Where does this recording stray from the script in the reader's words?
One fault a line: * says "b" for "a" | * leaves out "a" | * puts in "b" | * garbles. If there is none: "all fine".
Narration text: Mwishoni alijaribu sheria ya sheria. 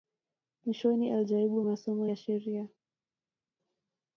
* says "masomo" for "sheria"